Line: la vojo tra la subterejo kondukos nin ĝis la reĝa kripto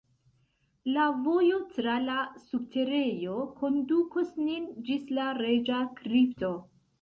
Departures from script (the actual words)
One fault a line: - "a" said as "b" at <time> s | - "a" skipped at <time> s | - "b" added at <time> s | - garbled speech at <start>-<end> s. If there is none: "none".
none